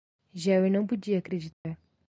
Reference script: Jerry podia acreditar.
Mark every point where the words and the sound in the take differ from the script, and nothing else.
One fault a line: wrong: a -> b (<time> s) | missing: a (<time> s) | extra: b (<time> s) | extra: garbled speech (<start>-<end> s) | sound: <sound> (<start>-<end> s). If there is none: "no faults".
extra: não (0.7 s)
sound: dropout (1.5-1.6 s)